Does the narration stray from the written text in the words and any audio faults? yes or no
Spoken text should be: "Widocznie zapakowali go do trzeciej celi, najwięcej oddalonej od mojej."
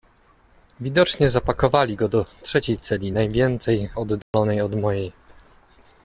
yes